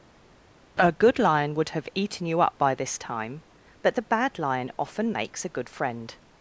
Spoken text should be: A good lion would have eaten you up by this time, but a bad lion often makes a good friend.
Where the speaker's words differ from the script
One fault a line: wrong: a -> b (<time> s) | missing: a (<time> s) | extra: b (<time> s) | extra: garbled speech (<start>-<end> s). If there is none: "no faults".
wrong: a -> the (3.9 s)